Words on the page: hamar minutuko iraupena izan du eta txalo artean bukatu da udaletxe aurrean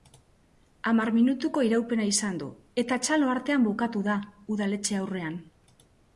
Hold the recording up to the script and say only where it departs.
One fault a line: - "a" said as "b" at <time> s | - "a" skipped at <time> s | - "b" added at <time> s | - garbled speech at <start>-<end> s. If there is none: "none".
none